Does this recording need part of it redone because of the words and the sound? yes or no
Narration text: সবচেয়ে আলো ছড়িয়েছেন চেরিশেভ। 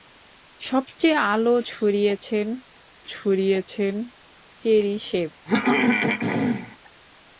yes